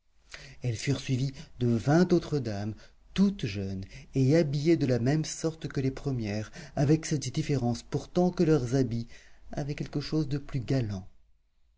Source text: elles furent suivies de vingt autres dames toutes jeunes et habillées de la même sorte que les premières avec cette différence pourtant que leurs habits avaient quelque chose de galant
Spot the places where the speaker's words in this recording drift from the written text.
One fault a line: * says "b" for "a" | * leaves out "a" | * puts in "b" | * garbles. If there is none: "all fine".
* puts in "plus"